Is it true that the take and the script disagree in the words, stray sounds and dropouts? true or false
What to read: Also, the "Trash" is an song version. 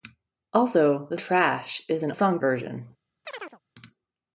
true